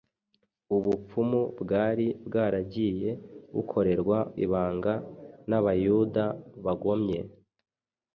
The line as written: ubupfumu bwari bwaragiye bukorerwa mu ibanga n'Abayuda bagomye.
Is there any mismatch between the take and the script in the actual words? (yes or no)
yes